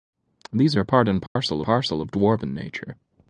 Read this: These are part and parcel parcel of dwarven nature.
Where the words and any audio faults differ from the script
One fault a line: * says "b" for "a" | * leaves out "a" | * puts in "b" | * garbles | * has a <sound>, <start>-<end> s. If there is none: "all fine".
* has a dropout, 1.3-1.4 s